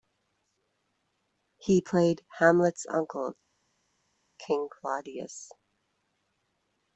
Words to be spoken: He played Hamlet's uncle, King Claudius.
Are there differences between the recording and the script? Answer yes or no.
no